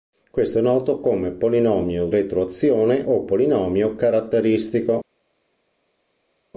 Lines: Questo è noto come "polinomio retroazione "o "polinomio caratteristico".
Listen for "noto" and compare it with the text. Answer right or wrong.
right